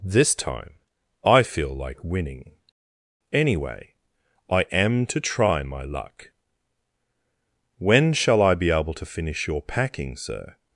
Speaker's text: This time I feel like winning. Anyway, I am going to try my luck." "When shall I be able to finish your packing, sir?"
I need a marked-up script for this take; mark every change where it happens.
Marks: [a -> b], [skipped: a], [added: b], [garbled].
This time I feel like winning. Anyway, I am [skipped: going] to try my luck." "When shall I be able to finish your packing, sir?"